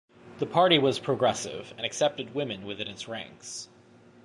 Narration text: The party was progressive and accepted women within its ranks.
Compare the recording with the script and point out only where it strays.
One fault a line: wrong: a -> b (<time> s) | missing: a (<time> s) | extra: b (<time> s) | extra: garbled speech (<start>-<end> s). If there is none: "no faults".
no faults